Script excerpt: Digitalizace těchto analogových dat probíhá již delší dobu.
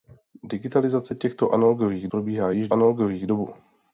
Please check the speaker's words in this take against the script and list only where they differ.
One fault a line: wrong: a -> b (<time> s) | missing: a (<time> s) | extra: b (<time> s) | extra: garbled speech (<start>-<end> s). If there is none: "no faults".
missing: dat (2.1 s)
wrong: delší -> analogových (2.7 s)